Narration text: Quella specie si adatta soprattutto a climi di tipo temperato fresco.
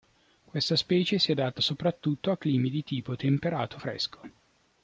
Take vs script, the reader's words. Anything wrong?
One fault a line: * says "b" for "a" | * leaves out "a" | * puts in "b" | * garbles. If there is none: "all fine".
* says "Questa" for "Quella"